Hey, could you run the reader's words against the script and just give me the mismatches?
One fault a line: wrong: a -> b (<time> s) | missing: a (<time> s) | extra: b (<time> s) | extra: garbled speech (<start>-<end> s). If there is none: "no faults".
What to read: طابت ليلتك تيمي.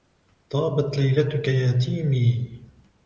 extra: يا (1.5 s)